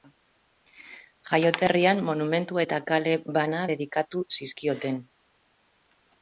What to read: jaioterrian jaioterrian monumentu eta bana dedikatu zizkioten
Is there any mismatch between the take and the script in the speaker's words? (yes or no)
yes